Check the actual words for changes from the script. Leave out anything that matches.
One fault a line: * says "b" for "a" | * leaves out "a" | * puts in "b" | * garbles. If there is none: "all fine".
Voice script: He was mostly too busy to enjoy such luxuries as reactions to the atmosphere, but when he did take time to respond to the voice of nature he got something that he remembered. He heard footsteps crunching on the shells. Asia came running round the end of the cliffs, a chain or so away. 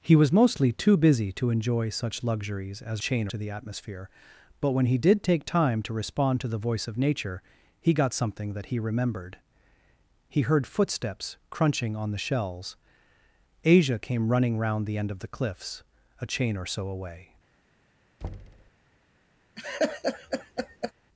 * says "chain" for "reactions"